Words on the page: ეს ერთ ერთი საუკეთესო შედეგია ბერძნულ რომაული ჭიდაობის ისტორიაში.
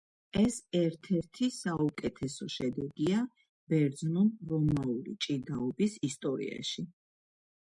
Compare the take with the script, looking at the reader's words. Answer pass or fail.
pass